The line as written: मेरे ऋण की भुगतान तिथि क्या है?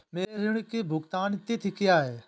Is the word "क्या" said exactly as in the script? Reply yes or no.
yes